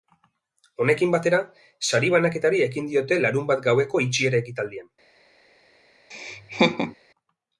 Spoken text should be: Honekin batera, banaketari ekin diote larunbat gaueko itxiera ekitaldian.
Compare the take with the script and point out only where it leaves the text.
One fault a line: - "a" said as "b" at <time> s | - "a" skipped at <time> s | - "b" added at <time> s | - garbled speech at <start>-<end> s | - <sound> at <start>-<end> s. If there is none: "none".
- "sari" added at 1.9 s
- laugh at 6.1-7.0 s